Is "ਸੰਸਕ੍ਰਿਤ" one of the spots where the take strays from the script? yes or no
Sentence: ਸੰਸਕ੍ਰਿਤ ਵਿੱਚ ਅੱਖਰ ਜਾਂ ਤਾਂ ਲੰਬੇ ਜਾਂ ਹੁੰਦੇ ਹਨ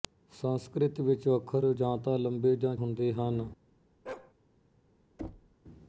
no